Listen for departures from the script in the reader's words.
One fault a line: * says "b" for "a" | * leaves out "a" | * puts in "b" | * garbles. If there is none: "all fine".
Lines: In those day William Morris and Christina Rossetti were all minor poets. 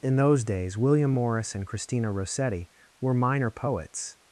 * says "days" for "day"
* leaves out "all"